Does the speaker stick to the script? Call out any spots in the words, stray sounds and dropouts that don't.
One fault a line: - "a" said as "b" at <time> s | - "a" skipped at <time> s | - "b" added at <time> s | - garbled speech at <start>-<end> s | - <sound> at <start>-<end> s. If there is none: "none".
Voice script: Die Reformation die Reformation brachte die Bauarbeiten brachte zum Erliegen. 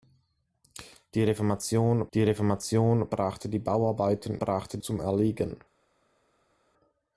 none